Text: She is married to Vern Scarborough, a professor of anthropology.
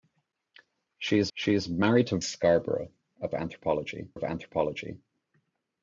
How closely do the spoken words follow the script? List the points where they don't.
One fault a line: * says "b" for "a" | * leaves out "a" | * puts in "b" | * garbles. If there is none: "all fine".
* puts in "she is"
* leaves out "Vern"
* says "anthropology" for "professor"